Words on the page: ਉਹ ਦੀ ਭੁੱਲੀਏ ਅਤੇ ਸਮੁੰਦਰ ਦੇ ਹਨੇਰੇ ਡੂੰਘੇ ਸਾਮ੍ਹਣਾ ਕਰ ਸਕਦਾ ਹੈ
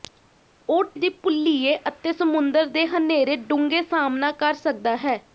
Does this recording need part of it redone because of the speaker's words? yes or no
no